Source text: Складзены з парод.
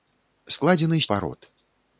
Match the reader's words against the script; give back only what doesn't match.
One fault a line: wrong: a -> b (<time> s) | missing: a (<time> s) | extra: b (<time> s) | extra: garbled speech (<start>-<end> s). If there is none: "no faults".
no faults